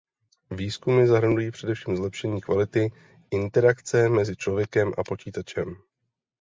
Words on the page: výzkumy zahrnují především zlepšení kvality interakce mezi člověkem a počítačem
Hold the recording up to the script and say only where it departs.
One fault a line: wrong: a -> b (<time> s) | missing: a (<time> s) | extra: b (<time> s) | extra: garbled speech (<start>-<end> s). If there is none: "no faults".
no faults